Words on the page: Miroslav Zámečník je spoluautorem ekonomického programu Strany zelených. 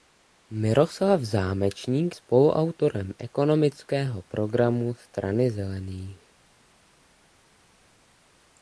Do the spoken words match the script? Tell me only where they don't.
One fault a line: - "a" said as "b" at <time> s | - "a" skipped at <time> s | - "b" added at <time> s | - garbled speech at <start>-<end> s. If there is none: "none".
- "je" skipped at 2.1 s